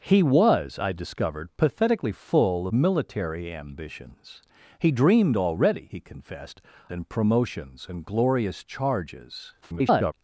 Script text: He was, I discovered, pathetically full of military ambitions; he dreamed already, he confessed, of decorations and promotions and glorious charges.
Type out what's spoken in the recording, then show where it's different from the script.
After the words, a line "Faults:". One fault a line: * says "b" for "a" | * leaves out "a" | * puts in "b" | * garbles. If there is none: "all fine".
He was, I discovered, pathetically full military ambitions; he dreamed already, he confessed, and promotions and glorious charges. [garbled]
Faults:
* leaves out "of"
* leaves out "of decorations"
* garbles